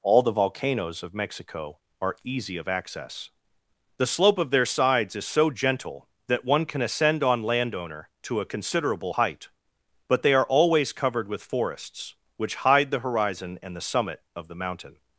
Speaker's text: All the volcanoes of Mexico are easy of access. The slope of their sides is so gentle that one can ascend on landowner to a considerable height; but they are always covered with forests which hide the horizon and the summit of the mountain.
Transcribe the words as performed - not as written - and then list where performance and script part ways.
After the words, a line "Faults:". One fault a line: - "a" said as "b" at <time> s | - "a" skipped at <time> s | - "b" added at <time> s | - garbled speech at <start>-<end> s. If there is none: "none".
All the volcanoes of Mexico are easy of access. The slope of their sides is so gentle that one can ascend on landowner to a considerable height; but they are always covered with forests which hide the horizon and the summit of the mountain.
Faults:
none